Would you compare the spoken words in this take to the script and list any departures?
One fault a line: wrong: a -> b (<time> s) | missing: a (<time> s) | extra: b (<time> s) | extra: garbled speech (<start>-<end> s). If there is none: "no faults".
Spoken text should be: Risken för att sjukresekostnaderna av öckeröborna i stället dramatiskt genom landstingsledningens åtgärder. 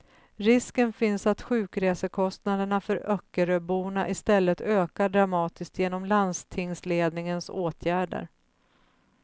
wrong: för -> finns (0.9 s)
wrong: av -> för (2.8 s)
extra: ökar (4.6 s)